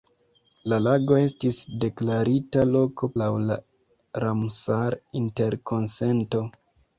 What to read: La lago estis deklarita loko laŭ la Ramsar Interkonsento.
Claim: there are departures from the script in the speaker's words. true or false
false